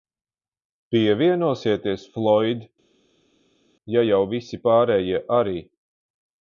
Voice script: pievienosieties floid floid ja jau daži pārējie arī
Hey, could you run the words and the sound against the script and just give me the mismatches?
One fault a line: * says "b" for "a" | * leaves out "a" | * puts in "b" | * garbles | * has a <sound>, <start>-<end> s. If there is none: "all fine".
* leaves out "floid"
* says "visi" for "daži"